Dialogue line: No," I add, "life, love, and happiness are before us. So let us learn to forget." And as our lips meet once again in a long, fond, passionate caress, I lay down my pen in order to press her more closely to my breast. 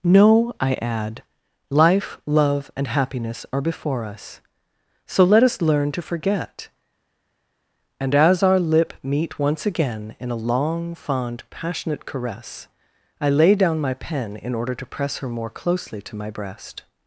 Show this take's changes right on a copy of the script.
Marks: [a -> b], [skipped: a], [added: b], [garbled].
No," I add, "life, love, and happiness are before us. So let us learn to forget." And as our [lips -> lip] meet once again in a long, fond, passionate caress, I lay down my pen in order to press her more closely to my breast.